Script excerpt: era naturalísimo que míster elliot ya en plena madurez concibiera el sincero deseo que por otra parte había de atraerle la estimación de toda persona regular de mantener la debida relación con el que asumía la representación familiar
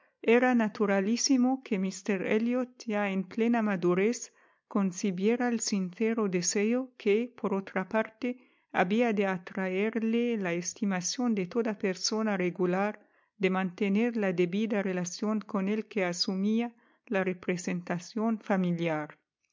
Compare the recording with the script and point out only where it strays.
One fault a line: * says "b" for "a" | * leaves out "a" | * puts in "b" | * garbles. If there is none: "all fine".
all fine